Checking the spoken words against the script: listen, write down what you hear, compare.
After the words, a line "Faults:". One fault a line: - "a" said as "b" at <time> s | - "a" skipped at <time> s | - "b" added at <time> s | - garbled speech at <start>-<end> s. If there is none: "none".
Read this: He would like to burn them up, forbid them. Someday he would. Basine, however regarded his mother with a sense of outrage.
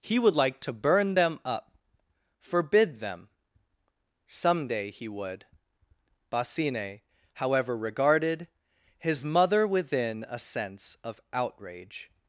He would like to burn them up, forbid them. Someday he would. Basine, however regarded his mother within a sense of outrage.
Faults:
- "with" said as "within" at 9.7 s